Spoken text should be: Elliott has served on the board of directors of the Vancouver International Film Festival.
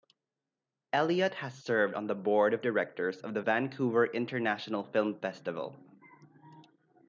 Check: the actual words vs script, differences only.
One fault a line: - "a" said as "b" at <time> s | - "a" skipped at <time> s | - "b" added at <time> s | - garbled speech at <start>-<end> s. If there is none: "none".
none